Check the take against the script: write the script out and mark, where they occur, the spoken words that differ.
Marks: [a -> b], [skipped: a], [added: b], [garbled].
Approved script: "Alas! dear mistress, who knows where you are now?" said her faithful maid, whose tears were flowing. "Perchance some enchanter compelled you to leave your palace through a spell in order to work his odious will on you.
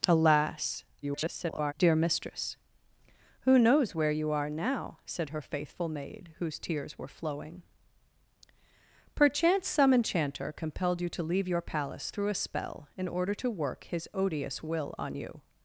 "Alas! [garbled] dear mistress, who knows where you are now?" said her faithful maid, whose tears were flowing. "Perchance some enchanter compelled you to leave your palace through a spell in order to work his odious will on you.